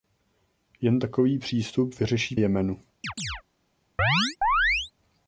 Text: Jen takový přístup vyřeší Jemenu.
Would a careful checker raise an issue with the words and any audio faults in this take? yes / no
yes